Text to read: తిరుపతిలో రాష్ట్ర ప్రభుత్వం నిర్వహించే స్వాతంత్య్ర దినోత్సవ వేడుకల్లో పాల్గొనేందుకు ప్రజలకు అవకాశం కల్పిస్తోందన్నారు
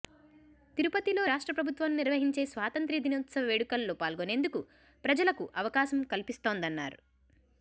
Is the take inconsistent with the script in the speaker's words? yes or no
no